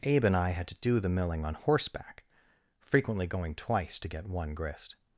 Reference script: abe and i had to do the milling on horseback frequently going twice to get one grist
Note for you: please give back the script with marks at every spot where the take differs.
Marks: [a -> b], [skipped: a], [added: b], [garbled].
abe and i had to do the milling on horseback frequently going twice to get one grist